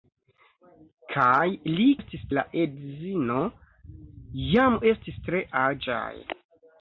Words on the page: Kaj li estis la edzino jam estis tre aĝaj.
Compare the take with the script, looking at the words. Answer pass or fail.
pass